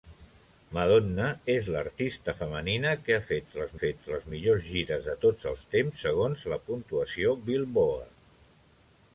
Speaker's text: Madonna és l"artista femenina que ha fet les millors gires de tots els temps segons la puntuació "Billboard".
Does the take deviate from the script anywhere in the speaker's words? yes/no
yes